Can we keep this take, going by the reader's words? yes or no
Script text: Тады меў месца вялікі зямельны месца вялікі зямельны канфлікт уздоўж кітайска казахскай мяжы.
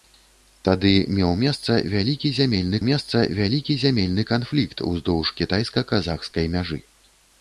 yes